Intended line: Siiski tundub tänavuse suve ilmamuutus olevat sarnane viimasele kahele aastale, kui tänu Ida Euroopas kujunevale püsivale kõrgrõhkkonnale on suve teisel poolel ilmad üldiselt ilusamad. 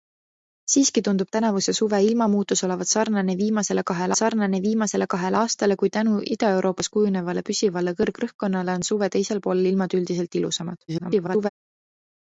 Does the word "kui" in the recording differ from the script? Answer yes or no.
no